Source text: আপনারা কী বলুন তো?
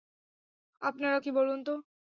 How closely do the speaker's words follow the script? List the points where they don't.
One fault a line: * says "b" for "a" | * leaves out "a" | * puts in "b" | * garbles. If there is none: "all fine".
all fine